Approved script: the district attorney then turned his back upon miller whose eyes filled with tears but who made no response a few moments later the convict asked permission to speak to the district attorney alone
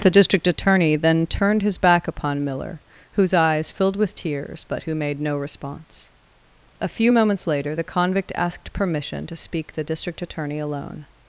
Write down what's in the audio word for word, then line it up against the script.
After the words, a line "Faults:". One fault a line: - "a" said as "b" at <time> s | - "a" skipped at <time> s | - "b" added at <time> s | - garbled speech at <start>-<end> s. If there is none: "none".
the district attorney then turned his back upon miller whose eyes filled with tears but who made no response a few moments later the convict asked permission to speak the district attorney alone
Faults:
- "to" skipped at 9.7 s